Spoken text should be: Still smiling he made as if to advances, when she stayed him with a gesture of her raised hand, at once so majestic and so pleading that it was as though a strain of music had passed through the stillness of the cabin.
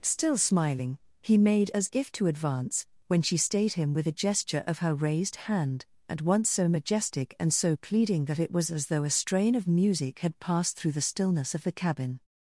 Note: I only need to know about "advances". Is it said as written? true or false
false